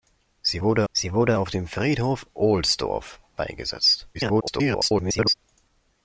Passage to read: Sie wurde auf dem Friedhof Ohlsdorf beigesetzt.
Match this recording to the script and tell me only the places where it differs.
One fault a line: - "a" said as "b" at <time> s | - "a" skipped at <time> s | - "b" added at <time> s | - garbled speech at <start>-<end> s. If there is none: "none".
- "sie wurde" added at 0.9 s
- garbled speech at 4.1-5.3 s